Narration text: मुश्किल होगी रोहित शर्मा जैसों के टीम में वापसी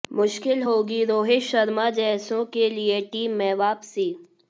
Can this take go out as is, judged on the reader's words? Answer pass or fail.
fail